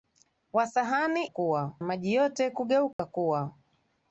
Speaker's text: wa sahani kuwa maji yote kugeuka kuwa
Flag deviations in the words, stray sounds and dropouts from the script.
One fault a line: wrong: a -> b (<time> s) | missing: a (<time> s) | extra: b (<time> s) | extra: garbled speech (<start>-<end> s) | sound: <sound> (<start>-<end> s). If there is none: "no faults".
sound: dropout (2.9-3.0 s)